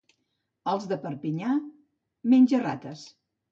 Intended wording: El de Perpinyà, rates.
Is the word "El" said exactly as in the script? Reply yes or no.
no